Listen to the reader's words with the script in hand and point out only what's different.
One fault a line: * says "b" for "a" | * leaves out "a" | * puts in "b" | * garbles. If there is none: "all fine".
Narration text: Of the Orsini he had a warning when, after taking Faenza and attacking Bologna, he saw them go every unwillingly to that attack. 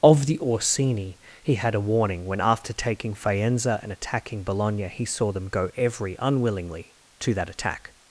all fine